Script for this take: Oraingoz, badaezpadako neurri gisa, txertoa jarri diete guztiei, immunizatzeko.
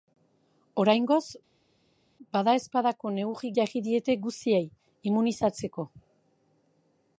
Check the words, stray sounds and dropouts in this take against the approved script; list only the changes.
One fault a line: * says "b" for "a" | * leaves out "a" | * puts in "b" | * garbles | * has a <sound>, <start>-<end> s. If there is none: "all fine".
* leaves out "gisa txertoa"